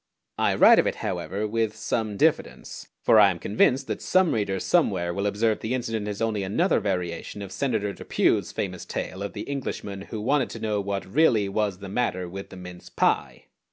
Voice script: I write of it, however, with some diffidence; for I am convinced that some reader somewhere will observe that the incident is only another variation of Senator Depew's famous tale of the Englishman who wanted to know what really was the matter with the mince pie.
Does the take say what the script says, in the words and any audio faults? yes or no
no